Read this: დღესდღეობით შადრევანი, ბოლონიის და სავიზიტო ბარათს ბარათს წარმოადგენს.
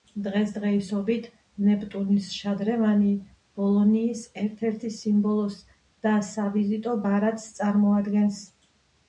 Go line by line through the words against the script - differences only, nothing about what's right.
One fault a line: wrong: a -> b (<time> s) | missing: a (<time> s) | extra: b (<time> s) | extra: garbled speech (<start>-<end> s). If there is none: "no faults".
extra: ნეპტუნის (1.6 s)
extra: ერთ ერთ სიმბოლოს (4.5 s)
missing: ბარათს (7.5 s)